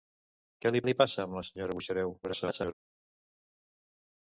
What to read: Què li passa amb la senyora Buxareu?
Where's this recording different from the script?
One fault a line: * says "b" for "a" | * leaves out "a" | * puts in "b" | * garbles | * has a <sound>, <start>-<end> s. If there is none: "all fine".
* puts in "li"
* garbles